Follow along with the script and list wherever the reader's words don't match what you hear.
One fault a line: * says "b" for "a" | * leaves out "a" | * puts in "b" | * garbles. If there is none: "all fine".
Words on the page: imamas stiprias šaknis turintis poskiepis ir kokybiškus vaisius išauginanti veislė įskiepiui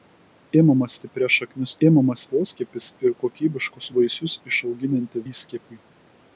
* says "imamas" for "turintis"
* leaves out "veislė"